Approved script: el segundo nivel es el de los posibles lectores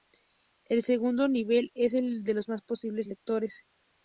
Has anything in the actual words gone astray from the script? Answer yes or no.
no